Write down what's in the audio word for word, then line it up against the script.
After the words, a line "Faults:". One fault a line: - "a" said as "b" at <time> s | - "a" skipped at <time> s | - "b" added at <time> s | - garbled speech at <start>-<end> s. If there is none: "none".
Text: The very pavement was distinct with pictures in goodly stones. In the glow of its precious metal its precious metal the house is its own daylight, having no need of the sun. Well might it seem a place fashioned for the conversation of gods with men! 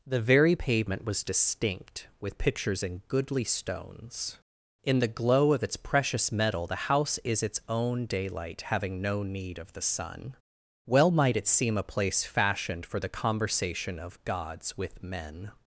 The very pavement was distinct with pictures in goodly stones. In the glow of its precious metal the house is its own daylight, having no need of the sun. Well might it seem a place fashioned for the conversation of gods with men!
Faults:
- "its precious metal" skipped at 6.7 s